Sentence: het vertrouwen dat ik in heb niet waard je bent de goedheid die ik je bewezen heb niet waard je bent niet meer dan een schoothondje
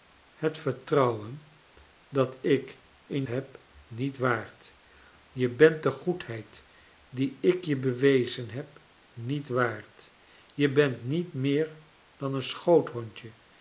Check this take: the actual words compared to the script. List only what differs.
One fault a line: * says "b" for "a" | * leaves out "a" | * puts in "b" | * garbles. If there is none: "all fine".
all fine